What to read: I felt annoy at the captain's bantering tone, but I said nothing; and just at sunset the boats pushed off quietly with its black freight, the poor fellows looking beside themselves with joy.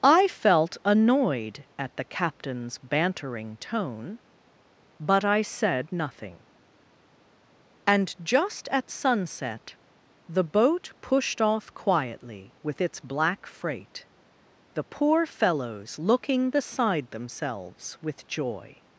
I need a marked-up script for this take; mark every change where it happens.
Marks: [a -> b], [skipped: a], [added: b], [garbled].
I felt [annoy -> annoyed] at the captain's bantering tone, but I said nothing; and just at sunset the [boats -> boat] pushed off quietly with its black freight, the poor fellows looking beside themselves with joy.